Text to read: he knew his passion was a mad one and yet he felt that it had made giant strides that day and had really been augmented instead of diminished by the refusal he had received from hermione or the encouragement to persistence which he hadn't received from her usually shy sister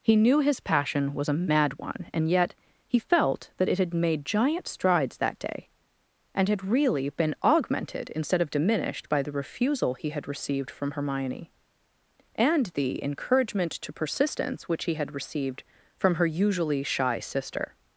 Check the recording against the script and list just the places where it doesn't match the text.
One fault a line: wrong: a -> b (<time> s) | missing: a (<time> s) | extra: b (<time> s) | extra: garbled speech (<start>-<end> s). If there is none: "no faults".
wrong: or -> and (12.3 s)
wrong: hadn't -> had (14.9 s)